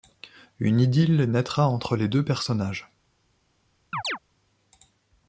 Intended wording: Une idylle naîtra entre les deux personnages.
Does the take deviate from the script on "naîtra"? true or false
false